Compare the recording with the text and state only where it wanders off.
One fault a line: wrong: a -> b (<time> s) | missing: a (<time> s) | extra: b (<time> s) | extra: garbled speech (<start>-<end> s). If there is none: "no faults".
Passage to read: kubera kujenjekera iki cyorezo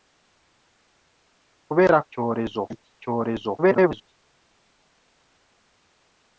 wrong: kujenjekera -> cyorezo (2.1 s)
extra: garbled speech (3.6-4.1 s)